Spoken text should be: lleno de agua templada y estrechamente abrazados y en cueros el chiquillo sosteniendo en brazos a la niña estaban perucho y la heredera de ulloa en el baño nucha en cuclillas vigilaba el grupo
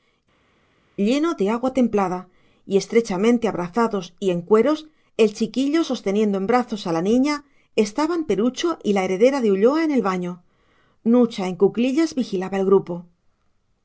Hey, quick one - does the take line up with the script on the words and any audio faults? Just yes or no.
yes